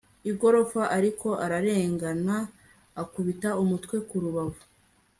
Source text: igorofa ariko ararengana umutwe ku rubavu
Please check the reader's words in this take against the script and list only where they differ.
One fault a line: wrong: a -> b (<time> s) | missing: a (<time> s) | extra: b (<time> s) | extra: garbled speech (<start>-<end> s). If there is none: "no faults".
extra: akubita (3.0 s)